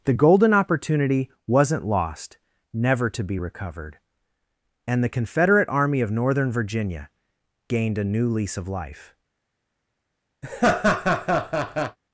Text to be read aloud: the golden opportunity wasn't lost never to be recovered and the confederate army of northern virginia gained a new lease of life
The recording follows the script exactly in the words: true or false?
true